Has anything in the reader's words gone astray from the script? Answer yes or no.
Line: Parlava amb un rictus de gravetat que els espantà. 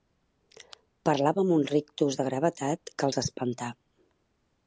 no